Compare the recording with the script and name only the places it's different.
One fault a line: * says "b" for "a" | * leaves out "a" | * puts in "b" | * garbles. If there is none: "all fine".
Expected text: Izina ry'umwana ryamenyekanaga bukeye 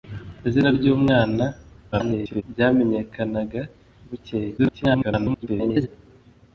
* garbles
* garbles